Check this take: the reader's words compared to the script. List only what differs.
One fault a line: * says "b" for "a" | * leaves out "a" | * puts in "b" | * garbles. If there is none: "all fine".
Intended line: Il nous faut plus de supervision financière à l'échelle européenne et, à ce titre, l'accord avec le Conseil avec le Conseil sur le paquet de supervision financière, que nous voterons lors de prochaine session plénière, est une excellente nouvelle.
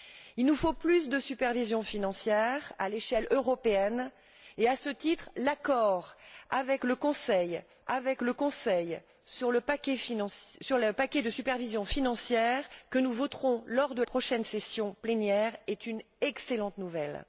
all fine